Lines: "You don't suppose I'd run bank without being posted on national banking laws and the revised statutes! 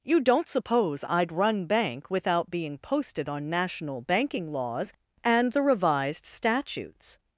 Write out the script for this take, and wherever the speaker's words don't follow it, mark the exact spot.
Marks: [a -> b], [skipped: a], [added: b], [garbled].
"You don't suppose I'd run bank without being posted on national banking laws and the revised statutes!